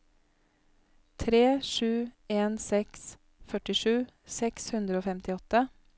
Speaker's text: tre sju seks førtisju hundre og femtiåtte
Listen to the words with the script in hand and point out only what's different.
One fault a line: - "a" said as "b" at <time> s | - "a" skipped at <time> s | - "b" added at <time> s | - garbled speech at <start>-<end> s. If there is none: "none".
- "en" added at 2.4 s
- "seks" added at 4.4 s